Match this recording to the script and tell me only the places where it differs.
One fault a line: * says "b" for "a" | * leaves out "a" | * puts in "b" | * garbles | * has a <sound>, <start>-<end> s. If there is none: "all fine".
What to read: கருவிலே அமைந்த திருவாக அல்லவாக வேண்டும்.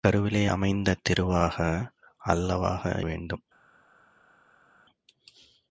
all fine